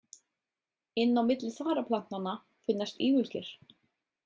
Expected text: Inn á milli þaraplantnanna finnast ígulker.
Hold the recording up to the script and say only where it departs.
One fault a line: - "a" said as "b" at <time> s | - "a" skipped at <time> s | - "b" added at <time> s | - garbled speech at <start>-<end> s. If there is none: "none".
none